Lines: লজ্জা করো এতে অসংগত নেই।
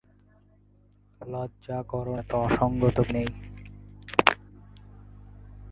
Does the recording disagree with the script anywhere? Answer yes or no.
no